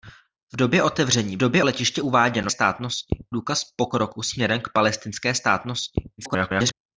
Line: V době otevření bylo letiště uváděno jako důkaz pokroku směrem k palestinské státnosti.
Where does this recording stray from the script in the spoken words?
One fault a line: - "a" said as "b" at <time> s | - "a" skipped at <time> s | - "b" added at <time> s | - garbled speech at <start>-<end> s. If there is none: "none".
- "bylo" said as "době" at 1.4 s
- "jako" said as "státnosti" at 2.5 s
- garbled speech at 6.2-6.7 s